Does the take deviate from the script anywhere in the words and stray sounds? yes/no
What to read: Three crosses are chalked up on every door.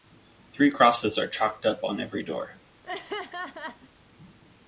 yes